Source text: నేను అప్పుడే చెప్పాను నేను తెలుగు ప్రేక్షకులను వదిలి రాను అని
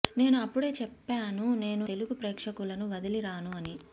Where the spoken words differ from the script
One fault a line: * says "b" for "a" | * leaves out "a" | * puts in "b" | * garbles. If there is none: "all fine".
all fine